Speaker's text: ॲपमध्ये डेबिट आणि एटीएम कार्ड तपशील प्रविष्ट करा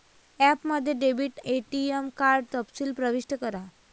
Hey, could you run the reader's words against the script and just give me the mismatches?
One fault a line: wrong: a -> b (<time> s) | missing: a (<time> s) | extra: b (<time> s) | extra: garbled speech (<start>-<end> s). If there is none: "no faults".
missing: आणि (1.4 s)